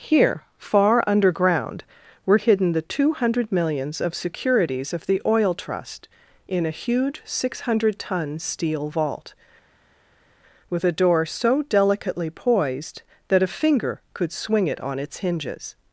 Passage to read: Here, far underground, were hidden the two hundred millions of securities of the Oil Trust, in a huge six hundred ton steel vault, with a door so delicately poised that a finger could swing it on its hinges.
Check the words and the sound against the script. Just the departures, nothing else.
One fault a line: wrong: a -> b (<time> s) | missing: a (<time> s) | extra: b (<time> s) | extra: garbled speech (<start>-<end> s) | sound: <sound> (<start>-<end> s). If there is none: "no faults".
no faults